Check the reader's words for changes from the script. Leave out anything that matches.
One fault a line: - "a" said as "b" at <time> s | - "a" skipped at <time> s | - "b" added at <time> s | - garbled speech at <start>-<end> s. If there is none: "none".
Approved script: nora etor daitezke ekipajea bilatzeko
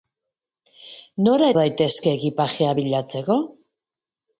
- "etor" skipped at 1.5 s